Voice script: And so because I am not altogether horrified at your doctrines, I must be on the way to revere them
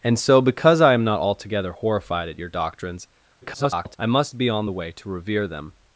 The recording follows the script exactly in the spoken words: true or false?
false